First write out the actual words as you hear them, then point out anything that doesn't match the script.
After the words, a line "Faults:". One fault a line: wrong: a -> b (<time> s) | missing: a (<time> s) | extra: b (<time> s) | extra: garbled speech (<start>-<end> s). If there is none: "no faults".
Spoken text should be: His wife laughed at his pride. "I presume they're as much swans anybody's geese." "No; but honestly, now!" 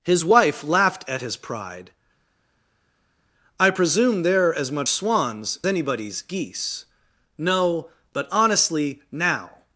His wife laughed at his pride. "I presume they're as much swans anybody's geese." "No; but honestly, now!"
Faults:
no faults